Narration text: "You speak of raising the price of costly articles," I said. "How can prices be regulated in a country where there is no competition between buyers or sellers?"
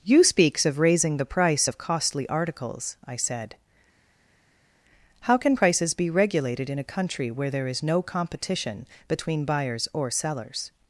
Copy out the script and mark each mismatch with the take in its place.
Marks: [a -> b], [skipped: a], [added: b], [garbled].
"You [speak -> speaks] of raising the price of costly articles," I said. "How can prices be regulated in a country where there is no competition between buyers or sellers?"